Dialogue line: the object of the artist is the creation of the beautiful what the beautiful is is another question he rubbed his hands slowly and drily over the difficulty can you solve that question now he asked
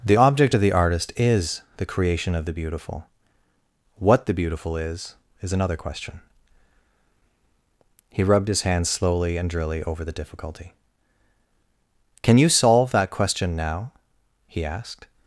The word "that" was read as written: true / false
true